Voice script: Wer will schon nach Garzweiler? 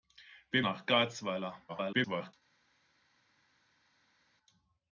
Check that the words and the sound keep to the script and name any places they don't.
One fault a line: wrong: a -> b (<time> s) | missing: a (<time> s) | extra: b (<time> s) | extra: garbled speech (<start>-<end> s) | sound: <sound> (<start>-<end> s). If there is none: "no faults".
missing: will schon (0.7 s)
extra: garbled speech (1.7-2.3 s)